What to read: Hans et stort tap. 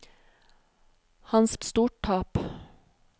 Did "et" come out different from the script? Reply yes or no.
no